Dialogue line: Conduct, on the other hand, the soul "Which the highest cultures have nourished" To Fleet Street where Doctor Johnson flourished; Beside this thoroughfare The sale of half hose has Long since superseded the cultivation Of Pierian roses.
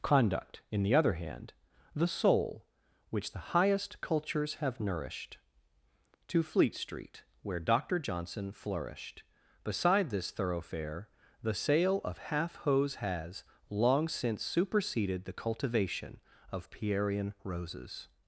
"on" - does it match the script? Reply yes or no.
no